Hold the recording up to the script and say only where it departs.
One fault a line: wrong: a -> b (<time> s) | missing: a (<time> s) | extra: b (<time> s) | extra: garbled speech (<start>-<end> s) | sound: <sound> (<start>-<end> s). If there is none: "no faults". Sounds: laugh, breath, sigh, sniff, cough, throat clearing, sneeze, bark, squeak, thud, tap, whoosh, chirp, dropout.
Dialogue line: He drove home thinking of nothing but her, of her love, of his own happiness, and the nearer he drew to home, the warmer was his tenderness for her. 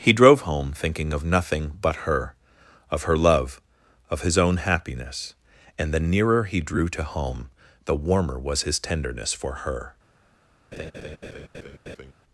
sound: laugh (10.7-12.1 s)